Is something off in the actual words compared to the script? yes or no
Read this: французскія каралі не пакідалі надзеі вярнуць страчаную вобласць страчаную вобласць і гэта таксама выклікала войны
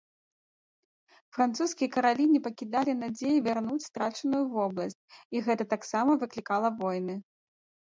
yes